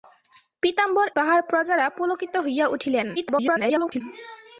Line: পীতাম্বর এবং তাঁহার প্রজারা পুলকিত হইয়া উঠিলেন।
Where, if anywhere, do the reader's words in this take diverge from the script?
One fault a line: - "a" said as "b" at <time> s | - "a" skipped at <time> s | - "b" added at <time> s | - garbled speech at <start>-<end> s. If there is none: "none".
- "এবং" skipped at 1.1 s
- garbled speech at 3.2-4.0 s